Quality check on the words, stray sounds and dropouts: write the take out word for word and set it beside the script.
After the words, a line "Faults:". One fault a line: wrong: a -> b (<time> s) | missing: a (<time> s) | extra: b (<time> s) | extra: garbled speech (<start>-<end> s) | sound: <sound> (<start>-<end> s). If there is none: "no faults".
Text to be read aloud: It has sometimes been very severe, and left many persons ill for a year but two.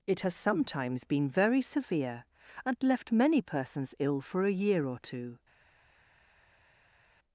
It has sometimes been very severe, and left many persons ill for a year or two.
Faults:
wrong: but -> or (4.8 s)